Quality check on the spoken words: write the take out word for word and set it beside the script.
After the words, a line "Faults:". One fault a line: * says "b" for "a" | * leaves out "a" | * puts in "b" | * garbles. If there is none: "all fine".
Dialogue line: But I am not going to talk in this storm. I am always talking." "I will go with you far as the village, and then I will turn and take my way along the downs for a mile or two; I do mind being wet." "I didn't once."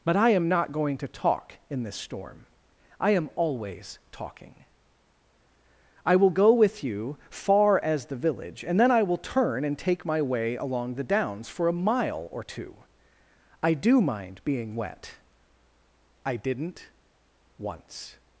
But I am not going to talk in this storm. I am always talking." "I will go with you far as the village, and then I will turn and take my way along the downs for a mile or two; I do mind being wet." "I didn't once."
Faults:
all fine